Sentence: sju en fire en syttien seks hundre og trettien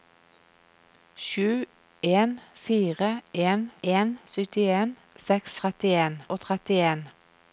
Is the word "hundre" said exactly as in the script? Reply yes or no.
no